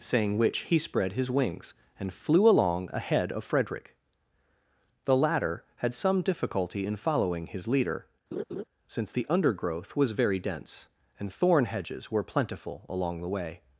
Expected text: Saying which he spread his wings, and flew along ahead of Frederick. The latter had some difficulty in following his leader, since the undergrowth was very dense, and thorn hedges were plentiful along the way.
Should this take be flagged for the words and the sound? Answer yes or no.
yes